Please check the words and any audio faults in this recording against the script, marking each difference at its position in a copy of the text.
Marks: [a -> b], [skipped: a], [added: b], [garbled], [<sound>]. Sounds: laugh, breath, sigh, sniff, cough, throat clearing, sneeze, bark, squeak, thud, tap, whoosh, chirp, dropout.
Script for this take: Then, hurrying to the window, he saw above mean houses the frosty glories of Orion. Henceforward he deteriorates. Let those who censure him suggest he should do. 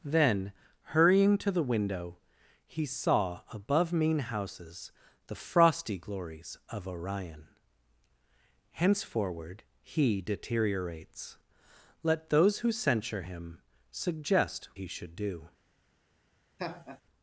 Then, hurrying to the window, he saw above mean houses the frosty glories of Orion. Henceforward he deteriorates. Let those who censure him suggest he should do. [laugh]